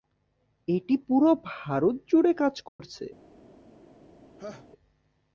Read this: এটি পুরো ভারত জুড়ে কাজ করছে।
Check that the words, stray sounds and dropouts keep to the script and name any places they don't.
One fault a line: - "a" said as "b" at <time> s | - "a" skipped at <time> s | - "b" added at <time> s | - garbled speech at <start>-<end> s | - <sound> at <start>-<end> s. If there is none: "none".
- dropout at 2.7-2.8 s
- laugh at 4.4-4.7 s